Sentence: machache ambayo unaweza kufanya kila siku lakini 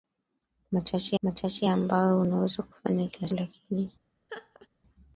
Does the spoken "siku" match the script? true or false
false